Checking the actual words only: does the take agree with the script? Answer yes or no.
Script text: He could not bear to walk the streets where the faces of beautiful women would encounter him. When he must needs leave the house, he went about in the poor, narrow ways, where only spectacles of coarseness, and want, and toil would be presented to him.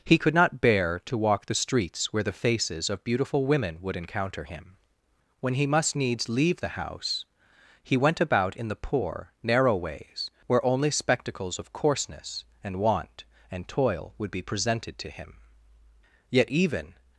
no